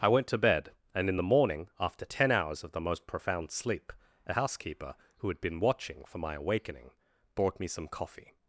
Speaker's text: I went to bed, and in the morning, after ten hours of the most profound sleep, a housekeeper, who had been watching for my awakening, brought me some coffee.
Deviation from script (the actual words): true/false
false